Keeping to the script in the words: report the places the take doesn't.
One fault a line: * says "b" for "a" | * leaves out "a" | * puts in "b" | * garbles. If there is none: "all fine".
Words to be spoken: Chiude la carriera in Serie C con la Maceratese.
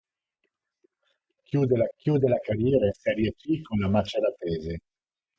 * puts in "chiude la"